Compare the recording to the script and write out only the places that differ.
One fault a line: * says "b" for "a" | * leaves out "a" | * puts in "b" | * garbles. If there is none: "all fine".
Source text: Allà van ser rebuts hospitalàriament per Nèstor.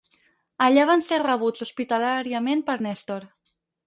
all fine